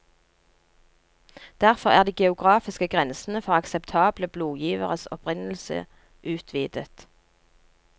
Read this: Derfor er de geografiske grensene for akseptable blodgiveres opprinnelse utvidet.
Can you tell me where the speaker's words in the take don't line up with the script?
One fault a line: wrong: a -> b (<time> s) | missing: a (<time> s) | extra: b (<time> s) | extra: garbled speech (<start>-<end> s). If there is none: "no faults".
no faults